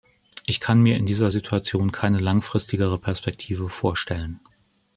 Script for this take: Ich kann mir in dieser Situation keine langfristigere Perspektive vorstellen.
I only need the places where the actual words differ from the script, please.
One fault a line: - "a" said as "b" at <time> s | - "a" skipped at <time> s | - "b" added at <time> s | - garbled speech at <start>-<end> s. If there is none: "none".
none